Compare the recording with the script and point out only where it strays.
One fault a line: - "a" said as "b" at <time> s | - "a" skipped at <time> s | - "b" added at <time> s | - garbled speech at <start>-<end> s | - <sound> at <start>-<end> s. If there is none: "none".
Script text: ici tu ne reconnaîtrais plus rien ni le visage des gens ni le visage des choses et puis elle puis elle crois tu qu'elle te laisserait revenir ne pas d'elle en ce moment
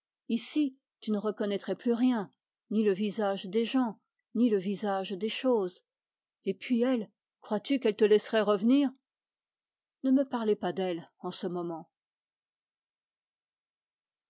- "puis elle" skipped at 7.1 s
- "me parlez" added at 10.1 s